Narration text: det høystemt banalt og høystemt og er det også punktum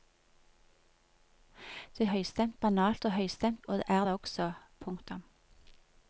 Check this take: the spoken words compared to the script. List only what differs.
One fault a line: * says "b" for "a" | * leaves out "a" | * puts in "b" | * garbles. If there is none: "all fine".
all fine